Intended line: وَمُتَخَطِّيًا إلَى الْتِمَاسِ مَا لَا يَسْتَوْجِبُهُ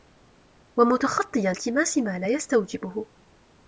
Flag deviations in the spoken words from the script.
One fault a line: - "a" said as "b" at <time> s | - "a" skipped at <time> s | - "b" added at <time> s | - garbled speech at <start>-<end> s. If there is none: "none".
- "إلَى" skipped at 1.5 s